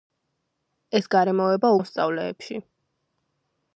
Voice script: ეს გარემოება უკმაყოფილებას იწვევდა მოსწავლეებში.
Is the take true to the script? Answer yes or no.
no